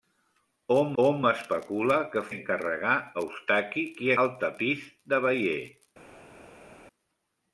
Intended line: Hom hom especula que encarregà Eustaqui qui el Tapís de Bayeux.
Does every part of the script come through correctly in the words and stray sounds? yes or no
yes